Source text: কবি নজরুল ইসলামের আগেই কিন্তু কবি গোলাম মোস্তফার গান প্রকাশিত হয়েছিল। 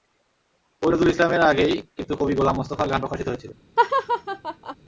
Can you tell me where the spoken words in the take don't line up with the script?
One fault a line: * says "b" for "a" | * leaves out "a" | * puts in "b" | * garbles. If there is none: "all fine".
all fine